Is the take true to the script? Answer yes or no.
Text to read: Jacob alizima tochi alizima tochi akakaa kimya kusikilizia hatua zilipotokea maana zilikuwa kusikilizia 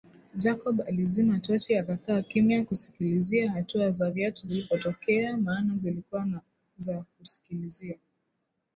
no